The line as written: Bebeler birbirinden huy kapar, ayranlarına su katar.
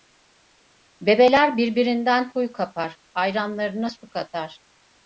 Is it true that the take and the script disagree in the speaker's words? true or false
false